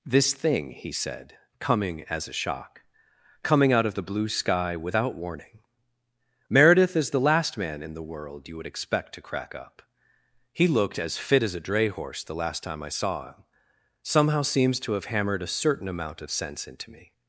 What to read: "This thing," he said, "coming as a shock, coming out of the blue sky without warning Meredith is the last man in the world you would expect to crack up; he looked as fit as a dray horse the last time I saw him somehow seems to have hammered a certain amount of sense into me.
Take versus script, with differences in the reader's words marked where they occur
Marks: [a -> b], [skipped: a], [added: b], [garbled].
"This thing," he said, "coming as a shock, coming out of the blue sky without warning Meredith is the last man in the world you would expect to crack up; he looked as fit as a dray horse the last time I saw him somehow seems to have hammered a certain amount of sense into me.